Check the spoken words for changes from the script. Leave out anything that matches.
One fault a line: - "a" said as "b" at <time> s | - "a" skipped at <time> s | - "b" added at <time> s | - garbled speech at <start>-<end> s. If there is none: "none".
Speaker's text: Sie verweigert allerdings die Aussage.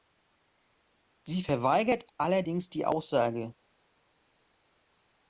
none